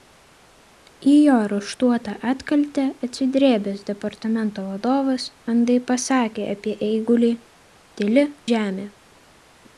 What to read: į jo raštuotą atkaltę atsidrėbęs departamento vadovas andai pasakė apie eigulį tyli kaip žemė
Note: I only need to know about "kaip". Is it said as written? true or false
false